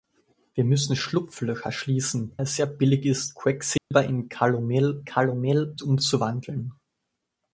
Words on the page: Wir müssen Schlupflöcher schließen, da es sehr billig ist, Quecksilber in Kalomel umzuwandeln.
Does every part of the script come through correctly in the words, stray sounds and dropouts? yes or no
no